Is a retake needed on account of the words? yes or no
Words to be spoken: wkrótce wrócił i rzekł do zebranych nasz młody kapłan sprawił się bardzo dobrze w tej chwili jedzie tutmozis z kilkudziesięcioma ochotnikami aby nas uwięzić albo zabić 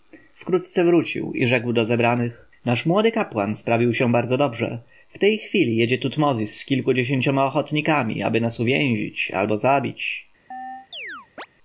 no